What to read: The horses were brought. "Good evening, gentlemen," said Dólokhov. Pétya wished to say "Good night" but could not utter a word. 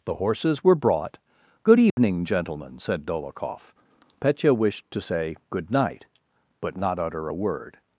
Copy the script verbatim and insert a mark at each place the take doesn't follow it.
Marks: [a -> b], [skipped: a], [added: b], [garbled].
The horses were brought. "Good evening, gentlemen," said Dólokhov. Pétya wished to say "Good night" but [skipped: could] not utter a word.